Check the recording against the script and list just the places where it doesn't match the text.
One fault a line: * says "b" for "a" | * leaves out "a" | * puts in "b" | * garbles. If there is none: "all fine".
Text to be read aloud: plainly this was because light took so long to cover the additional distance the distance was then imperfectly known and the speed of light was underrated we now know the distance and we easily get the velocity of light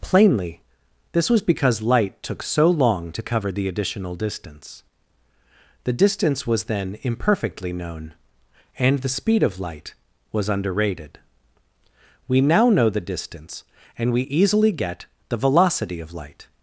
all fine